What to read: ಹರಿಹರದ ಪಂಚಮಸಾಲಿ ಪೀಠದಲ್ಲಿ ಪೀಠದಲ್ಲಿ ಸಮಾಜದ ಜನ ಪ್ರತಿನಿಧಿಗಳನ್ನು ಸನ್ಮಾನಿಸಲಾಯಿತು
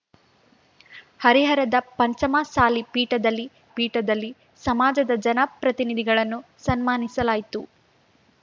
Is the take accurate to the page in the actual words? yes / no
yes